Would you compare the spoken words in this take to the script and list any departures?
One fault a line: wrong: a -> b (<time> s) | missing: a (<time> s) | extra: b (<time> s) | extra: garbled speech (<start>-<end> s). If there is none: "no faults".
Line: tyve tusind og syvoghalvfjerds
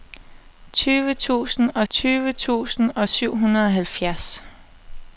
extra: tyve tusind og (1.9 s)